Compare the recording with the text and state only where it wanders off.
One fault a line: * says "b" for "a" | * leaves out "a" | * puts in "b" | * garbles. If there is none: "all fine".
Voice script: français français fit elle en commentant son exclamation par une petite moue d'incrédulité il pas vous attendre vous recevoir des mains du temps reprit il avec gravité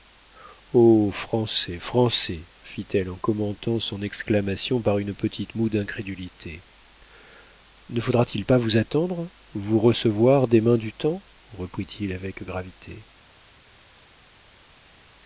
* puts in "ne faudra t"